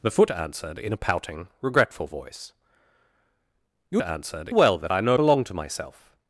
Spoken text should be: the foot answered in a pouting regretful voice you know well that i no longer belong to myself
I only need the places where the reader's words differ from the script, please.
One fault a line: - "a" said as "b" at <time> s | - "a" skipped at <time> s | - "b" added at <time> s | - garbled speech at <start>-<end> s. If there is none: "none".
- "know" said as "answered" at 4.0 s
- "longer" skipped at 5.2 s